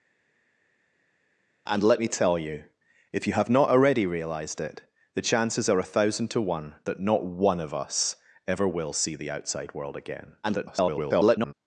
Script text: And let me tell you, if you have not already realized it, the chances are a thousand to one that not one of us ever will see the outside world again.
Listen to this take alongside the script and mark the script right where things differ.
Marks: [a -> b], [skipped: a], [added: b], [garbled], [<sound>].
And let me tell you, if you have not already realized it, the chances are a thousand to one that not one of us ever will see the outside world again. [garbled]